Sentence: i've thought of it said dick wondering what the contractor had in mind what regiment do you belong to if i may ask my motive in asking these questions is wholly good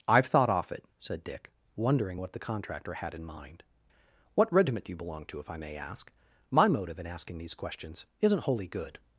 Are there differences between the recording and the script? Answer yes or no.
yes